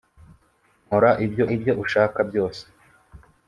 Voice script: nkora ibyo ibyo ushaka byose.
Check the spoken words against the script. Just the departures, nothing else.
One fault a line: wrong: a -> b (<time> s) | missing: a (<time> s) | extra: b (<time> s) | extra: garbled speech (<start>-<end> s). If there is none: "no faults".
no faults